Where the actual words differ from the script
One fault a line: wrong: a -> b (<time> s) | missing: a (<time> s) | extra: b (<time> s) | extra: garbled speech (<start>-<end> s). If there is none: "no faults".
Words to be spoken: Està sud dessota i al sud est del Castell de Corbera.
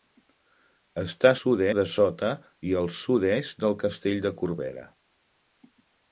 no faults